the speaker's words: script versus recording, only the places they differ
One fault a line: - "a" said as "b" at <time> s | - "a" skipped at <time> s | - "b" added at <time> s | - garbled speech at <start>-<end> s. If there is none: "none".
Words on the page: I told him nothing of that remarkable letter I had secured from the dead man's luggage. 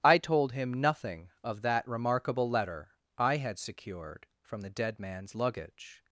none